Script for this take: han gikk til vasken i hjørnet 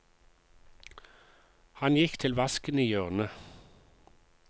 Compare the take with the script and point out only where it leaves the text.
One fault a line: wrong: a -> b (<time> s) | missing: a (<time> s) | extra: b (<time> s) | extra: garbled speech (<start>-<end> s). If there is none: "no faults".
no faults